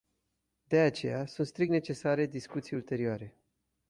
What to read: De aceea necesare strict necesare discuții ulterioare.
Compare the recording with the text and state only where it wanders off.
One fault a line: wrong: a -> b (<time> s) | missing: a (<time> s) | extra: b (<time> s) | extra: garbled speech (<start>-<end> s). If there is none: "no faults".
wrong: necesare -> sunt (1.2 s)